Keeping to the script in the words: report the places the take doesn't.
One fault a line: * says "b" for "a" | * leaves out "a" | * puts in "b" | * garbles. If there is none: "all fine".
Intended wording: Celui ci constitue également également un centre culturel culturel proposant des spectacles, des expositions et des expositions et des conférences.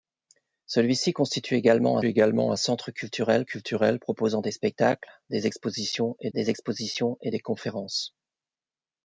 all fine